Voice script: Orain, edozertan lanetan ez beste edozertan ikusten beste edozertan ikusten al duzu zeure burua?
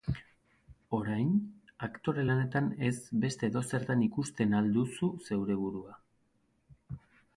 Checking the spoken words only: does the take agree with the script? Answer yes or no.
no